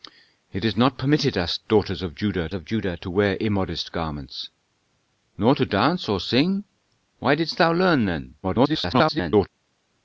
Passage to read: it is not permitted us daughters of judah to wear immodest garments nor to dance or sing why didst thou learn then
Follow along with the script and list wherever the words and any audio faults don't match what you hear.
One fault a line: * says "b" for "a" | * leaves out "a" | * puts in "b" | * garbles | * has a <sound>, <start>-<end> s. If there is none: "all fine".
* puts in "of judah"
* garbles